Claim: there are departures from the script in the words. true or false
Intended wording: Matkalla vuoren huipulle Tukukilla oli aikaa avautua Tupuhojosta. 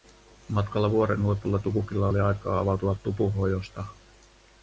false